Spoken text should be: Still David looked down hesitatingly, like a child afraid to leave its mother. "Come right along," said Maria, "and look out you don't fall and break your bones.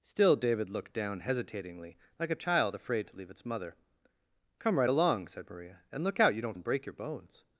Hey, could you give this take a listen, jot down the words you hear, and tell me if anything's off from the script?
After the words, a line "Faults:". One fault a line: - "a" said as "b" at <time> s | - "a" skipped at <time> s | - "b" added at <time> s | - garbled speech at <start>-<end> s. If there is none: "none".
Still David looked down hesitatingly, like a child afraid to leave its mother. "Come right along," said Maria, "and look out you don't and break your bones.
Faults:
- "fall" skipped at 6.6 s